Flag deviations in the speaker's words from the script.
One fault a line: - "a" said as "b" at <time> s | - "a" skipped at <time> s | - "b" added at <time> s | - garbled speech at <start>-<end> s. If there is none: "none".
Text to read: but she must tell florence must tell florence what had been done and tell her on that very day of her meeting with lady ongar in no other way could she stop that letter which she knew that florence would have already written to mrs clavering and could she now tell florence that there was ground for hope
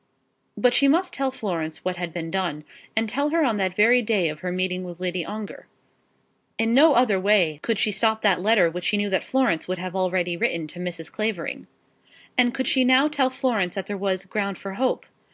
- "must tell florence" skipped at 1.9 s